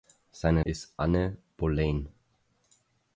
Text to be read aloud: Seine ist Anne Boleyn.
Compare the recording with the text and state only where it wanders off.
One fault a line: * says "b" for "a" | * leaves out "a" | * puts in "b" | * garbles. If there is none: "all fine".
all fine